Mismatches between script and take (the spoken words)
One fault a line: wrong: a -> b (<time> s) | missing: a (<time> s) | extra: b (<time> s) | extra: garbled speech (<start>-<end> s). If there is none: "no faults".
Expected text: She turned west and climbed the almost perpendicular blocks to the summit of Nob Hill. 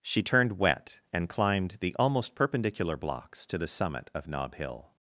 wrong: west -> wet (0.6 s)